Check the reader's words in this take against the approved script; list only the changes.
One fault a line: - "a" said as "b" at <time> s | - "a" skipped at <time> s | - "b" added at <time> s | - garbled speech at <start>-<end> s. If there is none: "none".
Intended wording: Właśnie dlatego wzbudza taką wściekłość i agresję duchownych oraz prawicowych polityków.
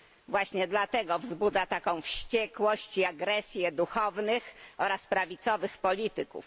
none